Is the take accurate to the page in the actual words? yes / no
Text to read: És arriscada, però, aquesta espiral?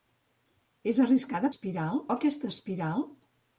no